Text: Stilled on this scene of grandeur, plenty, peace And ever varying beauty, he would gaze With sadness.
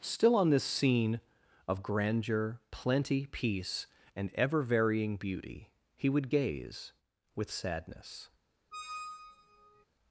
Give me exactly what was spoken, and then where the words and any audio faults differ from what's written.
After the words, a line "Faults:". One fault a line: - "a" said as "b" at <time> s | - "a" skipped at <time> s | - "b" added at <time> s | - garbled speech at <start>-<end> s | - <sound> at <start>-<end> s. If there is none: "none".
Still on this scene of grandeur, plenty, peace And ever varying beauty, he would gaze With sadness.
Faults:
- "Stilled" said as "Still" at 0.0 s
- squeak at 8.7-9.9 s